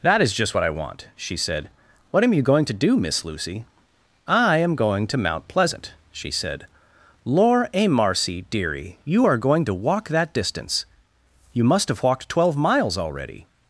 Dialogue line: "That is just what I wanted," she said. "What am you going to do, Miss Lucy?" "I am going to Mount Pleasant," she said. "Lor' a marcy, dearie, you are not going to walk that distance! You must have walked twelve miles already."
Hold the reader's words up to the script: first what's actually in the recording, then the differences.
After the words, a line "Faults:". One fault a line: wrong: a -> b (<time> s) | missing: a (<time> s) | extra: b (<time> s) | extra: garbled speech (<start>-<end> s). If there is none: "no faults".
"That is just what I want," she said. "What am you going to do, Miss Lucy?" "I am going to Mount Pleasant," she said. "Lor' a marcy, dearie, you are going to walk that distance! You must have walked twelve miles already."
Faults:
wrong: wanted -> want (0.7 s)
missing: not (9.4 s)